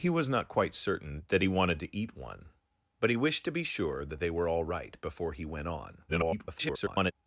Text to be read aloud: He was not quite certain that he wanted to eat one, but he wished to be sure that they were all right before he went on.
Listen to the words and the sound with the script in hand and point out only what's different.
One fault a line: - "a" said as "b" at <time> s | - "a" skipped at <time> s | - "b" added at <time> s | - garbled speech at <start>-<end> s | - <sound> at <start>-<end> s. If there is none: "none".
- garbled speech at 6.1-7.1 s